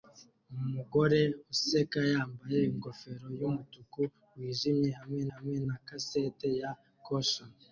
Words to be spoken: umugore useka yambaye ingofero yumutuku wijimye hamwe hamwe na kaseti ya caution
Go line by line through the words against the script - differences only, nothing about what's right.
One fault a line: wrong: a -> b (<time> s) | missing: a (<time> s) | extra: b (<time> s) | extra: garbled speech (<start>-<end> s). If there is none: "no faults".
no faults